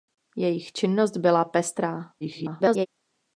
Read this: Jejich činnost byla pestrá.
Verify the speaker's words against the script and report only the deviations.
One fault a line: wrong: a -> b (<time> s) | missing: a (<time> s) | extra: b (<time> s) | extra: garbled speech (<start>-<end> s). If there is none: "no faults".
extra: garbled speech (2.2-2.9 s)